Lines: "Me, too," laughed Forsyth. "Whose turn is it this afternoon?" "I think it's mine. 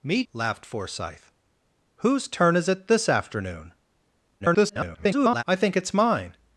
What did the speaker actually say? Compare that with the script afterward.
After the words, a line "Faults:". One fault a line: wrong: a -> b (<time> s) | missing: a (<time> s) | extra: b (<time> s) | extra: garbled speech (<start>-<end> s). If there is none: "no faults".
"Me," laughed Forsyth. "Whose turn is it this afternoon?" [garbled] "I think it's mine.
Faults:
missing: too (0.2 s)
extra: garbled speech (4.4-5.4 s)